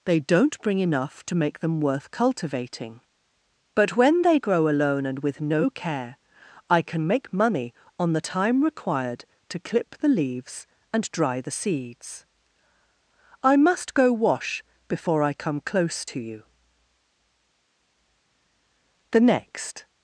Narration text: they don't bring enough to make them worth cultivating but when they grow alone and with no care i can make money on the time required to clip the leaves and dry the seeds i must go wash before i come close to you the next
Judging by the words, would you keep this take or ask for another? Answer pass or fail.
pass